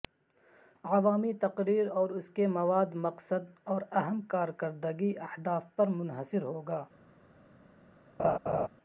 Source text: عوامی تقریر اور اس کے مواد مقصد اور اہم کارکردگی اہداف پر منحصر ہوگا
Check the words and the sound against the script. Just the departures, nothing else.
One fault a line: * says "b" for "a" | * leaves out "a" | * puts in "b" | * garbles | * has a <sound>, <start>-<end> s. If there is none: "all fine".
* has a laugh, 8.2-8.7 s